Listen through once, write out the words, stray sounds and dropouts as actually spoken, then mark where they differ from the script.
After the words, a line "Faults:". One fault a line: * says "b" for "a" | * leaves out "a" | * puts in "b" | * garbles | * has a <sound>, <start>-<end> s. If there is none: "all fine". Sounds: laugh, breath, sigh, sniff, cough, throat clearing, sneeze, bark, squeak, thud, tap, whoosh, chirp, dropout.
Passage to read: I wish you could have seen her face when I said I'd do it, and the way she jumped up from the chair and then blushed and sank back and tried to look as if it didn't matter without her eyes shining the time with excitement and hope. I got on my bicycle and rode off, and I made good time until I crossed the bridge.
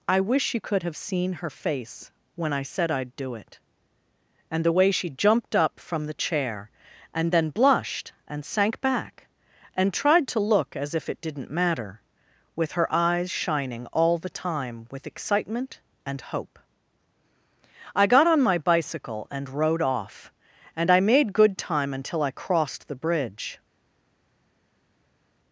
I wish you could have seen her face when I said I'd do it, and the way she jumped up from the chair and then blushed and sank back and tried to look as if it didn't matter with her eyes shining all the time with excitement and hope. I got on my bicycle and rode off, and I made good time until I crossed the bridge.
Faults:
* says "with" for "without"
* puts in "all"